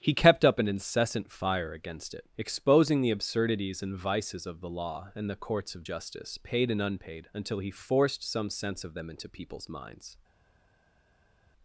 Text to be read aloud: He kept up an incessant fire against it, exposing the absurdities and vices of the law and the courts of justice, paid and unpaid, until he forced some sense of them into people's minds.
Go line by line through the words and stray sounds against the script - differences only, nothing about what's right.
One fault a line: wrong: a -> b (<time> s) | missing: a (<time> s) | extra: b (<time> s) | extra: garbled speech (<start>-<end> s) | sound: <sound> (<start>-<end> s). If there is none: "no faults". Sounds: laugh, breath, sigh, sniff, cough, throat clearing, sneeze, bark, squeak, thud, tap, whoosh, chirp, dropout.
no faults